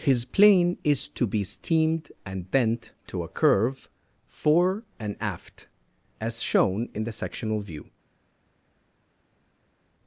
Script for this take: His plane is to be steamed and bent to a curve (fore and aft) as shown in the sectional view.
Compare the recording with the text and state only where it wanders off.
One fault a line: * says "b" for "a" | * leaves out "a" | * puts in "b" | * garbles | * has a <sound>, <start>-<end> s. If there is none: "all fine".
all fine